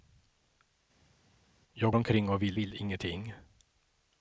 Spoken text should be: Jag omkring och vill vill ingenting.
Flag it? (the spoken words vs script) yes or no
no